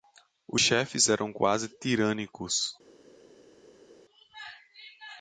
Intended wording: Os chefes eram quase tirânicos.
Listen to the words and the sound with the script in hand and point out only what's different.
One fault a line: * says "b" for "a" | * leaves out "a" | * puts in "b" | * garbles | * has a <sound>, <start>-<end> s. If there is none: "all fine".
all fine